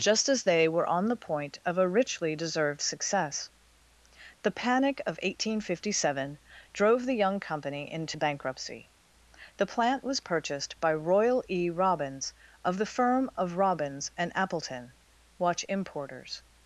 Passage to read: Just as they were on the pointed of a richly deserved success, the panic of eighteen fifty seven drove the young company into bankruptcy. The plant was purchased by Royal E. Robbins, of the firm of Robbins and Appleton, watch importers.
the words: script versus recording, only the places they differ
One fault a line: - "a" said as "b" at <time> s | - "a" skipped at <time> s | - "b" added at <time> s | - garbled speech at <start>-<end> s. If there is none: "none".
- "pointed" said as "point" at 1.2 s